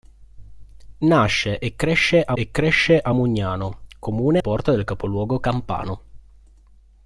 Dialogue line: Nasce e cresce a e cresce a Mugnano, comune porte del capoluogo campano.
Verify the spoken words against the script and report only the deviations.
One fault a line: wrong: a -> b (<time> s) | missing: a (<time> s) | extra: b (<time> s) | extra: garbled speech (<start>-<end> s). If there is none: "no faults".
no faults